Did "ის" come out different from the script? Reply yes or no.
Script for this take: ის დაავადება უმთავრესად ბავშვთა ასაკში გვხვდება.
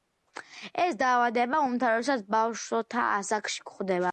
yes